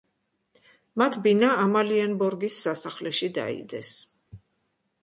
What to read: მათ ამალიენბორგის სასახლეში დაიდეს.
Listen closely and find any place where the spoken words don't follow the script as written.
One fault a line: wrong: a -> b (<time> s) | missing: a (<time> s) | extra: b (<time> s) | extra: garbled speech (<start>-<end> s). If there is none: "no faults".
extra: ბინა (1.3 s)